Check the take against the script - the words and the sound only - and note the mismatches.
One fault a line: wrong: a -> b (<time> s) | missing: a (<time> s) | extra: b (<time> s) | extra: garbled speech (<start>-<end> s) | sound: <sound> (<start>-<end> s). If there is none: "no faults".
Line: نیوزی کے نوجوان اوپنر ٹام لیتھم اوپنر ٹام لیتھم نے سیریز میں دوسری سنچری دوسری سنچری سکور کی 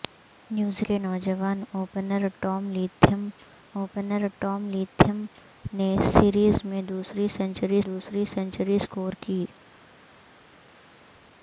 no faults